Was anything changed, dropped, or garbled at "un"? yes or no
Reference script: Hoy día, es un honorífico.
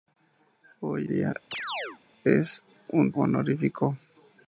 no